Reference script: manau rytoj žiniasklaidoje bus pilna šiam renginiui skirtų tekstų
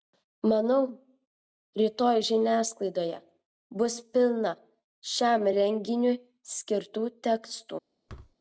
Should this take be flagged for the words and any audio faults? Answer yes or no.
yes